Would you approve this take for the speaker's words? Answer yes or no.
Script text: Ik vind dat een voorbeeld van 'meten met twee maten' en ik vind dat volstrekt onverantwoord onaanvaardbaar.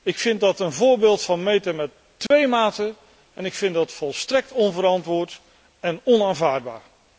no